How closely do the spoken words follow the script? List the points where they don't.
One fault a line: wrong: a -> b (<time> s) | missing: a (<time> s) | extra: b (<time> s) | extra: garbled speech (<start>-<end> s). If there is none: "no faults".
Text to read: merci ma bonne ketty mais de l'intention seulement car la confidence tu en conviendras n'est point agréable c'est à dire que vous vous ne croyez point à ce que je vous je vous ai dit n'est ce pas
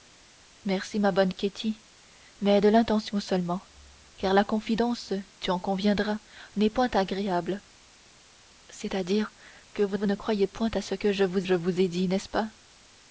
no faults